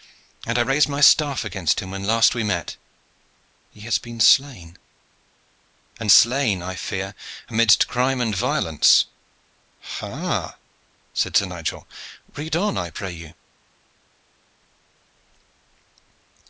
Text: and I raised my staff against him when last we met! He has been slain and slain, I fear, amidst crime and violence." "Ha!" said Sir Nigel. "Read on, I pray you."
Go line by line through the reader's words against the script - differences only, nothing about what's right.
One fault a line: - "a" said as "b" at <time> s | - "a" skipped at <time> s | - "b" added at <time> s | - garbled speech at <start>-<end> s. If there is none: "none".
none